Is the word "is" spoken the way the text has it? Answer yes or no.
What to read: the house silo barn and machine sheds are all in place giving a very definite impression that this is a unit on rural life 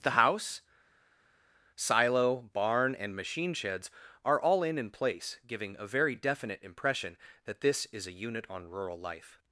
yes